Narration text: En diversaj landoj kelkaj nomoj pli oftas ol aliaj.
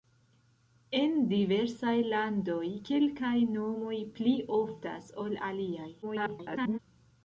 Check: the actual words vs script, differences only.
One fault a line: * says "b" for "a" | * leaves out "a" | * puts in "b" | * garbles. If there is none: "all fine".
* garbles